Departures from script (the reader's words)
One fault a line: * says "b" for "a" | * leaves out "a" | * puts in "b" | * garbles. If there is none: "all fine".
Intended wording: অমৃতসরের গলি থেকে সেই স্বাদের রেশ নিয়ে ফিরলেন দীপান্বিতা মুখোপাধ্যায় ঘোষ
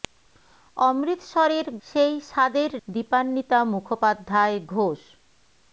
* leaves out "গলি থেকে"
* leaves out "রেশ নিয়ে ফিরলেন"